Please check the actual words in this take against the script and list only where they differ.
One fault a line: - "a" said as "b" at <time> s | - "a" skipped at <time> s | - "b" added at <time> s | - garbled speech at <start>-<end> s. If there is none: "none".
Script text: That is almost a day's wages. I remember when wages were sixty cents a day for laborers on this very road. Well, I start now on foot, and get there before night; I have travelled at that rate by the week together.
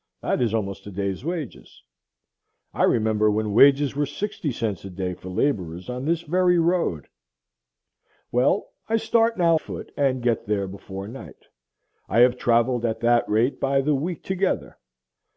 - "on" skipped at 9.6 s